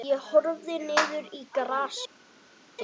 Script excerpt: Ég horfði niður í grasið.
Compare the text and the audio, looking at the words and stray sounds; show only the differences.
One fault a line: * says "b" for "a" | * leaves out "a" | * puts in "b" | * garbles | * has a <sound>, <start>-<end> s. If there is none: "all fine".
all fine